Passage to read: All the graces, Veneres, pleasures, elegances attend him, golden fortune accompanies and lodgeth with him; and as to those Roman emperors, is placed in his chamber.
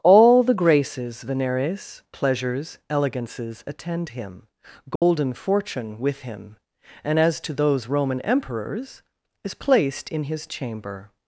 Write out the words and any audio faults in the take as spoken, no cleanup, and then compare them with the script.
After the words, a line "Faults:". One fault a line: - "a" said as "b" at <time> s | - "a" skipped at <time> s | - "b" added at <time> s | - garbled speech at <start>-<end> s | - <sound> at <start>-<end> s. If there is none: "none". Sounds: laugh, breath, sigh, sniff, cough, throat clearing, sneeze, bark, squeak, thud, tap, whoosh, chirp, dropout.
All the graces, Veneres, pleasures, elegances attend him, golden fortune with him; and as to those Roman emperors, is placed in his chamber.
Faults:
- dropout at 5.0-5.0 s
- "accompanies and lodgeth" skipped at 6.0 s